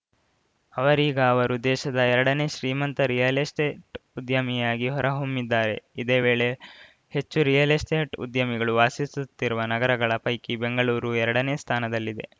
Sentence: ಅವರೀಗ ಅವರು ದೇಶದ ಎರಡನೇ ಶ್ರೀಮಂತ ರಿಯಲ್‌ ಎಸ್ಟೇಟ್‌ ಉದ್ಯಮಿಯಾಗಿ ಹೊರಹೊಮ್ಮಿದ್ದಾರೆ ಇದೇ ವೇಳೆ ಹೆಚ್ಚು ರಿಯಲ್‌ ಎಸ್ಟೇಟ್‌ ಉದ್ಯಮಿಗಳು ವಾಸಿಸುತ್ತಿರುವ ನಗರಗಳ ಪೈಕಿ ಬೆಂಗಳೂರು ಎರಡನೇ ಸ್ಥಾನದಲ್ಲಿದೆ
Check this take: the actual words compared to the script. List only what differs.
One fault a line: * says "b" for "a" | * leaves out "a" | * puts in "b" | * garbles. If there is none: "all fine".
all fine